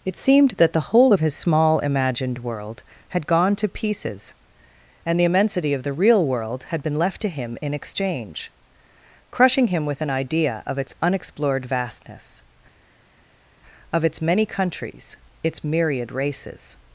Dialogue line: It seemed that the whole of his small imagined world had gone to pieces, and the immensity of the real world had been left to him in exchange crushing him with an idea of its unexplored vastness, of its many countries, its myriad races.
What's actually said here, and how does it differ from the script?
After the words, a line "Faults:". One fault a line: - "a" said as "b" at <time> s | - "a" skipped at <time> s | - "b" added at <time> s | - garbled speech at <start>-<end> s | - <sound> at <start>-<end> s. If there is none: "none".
It seemed that the whole of his small imagined world had gone to pieces, and the immensity of the real world had been left to him in exchange crushing him with an idea of its unexplored vastness, of its many countries, its myriad races.
Faults:
none